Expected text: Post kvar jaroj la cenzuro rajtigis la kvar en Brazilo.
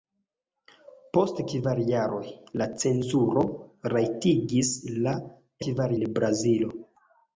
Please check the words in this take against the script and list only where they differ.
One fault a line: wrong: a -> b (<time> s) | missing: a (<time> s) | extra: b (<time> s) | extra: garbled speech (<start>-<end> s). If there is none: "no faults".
no faults